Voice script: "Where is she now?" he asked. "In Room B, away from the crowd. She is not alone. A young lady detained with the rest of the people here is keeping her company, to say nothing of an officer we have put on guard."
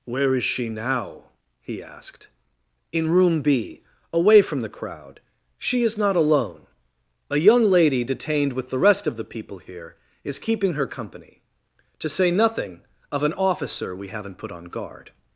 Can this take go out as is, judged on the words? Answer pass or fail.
fail